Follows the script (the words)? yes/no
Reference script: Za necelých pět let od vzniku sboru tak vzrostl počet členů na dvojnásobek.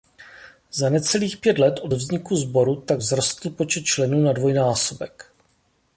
yes